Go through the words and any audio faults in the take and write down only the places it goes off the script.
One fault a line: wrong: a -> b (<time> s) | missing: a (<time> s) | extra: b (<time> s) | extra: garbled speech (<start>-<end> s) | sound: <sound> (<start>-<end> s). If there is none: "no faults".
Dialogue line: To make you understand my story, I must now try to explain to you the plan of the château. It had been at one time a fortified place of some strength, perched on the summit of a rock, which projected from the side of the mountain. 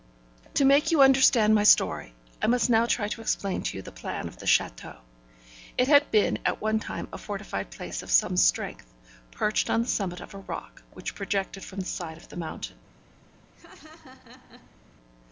sound: laugh (13.5-14.8 s)